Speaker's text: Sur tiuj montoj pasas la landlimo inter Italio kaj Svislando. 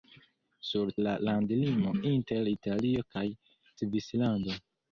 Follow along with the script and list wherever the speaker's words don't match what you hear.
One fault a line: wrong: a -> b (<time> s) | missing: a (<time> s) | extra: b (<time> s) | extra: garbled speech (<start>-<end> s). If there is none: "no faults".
missing: tiuj montoj pasas (0.9 s)